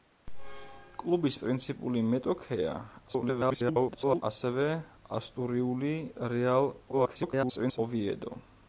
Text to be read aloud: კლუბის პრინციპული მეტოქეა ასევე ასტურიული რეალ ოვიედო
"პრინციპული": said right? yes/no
yes